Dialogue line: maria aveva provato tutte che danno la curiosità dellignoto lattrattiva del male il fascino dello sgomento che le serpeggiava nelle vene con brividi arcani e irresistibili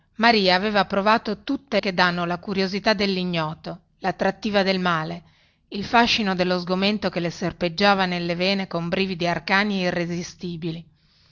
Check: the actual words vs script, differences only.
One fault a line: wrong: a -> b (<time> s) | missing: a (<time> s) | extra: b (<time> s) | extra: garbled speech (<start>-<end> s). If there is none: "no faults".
no faults